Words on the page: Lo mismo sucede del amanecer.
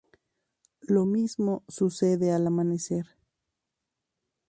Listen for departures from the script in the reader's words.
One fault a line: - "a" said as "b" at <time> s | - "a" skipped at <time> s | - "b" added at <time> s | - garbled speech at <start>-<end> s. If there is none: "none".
- "del" said as "al" at 2.3 s